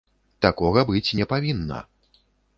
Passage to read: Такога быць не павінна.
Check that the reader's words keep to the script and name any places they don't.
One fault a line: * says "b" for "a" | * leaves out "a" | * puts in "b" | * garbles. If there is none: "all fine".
all fine